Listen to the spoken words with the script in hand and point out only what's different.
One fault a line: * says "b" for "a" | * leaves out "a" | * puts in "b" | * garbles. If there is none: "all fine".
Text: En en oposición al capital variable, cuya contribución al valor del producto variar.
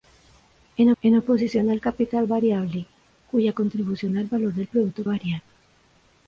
all fine